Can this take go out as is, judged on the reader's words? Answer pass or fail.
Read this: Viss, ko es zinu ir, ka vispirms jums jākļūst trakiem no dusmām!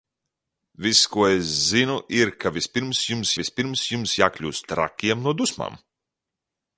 fail